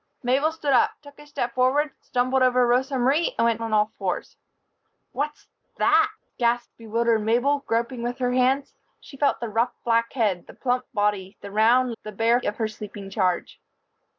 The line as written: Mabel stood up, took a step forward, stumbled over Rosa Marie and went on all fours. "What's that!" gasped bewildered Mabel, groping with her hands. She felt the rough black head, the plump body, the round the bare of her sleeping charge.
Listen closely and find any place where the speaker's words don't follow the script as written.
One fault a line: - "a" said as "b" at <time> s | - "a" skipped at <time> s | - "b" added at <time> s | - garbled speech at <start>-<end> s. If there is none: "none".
none